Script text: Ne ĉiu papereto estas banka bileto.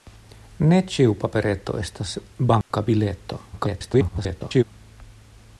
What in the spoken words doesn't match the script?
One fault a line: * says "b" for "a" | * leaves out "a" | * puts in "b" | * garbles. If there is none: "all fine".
* garbles